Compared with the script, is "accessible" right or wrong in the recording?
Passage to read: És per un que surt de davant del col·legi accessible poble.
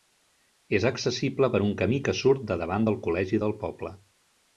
wrong